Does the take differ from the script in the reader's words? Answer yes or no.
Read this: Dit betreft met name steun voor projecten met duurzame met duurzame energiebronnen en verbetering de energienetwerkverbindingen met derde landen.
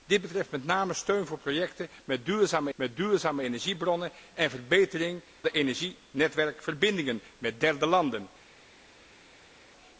no